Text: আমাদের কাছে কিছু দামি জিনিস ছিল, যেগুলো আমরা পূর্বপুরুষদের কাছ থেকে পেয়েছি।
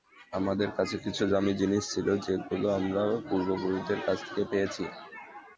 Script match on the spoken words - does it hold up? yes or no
yes